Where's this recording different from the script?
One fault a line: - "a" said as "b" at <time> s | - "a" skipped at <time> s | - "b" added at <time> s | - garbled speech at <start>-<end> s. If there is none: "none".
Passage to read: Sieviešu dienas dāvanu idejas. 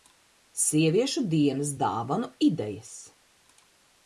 none